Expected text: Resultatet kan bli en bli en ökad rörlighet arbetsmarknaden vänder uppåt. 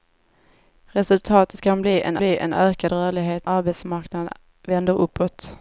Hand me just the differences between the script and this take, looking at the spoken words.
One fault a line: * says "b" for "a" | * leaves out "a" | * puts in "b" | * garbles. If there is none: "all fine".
all fine